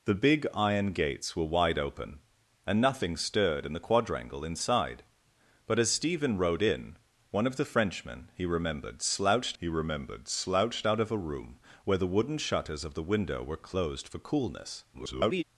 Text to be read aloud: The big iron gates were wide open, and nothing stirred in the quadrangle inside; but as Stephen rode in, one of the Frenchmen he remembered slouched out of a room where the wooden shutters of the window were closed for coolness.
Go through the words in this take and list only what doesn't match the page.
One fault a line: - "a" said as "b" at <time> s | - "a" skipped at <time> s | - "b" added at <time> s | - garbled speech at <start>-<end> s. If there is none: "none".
- "he remembered slouched" added at 9.6 s
- garbled speech at 14.9-15.4 s